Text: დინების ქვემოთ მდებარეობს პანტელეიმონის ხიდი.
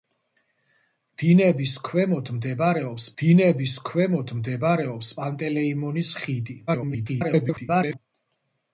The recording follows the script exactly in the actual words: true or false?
false